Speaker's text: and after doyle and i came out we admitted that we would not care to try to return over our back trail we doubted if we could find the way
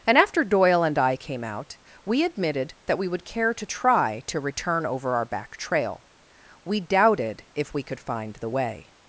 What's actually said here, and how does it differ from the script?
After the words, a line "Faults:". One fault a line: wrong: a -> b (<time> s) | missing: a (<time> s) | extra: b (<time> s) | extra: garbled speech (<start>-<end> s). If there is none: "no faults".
and after doyle and i came out we admitted that we would care to try to return over our back trail we doubted if we could find the way
Faults:
missing: not (3.2 s)